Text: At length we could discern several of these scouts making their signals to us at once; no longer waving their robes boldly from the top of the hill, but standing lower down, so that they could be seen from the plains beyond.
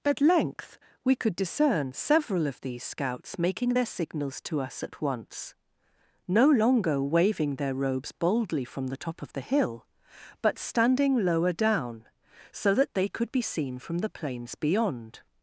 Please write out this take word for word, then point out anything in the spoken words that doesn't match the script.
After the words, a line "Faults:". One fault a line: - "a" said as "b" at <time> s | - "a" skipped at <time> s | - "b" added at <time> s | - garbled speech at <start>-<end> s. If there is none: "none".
At length we could discern several of these scouts making their signals to us at once; no longer waving their robes boldly from the top of the hill, but standing lower down, so that they could be seen from the plains beyond.
Faults:
none